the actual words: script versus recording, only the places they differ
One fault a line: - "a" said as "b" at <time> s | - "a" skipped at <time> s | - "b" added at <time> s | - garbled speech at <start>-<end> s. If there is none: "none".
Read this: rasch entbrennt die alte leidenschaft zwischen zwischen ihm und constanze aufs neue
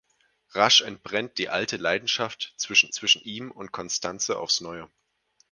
none